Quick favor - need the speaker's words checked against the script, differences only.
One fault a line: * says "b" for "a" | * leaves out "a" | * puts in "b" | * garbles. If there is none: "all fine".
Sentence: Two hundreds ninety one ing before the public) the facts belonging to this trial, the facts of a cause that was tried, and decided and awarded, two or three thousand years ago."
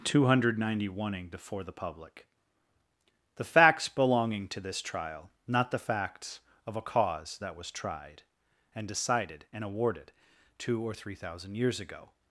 * says "hundred" for "hundreds"
* puts in "not"